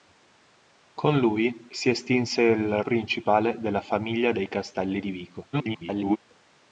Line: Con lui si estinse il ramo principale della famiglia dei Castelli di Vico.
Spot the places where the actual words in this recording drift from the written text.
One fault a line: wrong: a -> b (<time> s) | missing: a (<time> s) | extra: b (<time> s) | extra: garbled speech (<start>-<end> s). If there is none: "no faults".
missing: ramo (2.8 s)
extra: garbled speech (5.5-6.2 s)